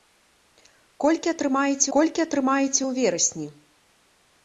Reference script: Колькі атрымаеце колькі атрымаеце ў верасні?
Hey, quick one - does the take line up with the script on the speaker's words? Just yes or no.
yes